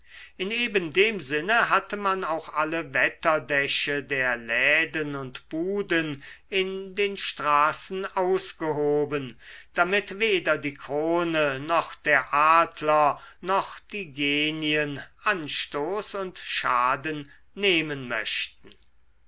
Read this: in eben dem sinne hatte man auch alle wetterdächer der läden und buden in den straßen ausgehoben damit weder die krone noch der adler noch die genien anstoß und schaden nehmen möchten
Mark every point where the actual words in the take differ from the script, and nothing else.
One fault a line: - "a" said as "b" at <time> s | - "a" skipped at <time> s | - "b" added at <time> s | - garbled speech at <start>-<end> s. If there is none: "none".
none